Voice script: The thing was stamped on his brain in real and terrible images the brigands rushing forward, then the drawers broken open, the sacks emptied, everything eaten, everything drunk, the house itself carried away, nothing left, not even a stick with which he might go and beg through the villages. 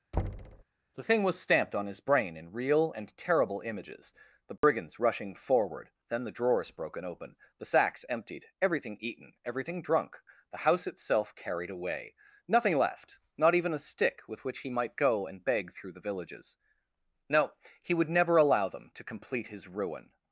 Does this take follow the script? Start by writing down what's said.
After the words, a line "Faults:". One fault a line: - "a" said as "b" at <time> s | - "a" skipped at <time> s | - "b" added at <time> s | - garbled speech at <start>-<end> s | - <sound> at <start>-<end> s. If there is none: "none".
The thing was stamped on his brain in real and terrible images the brigands rushing forward, then the drawers broken open, the sacks emptied, everything eaten, everything drunk, the house itself carried away, nothing left, not even a stick with which he might go and beg through the villages. No, he would never allow them to complete his ruin
Faults:
- thud at 0.1-0.6 s
- dropout at 4.6-4.6 s
- "No he would never allow them to complete his ruin" added at 17.3 s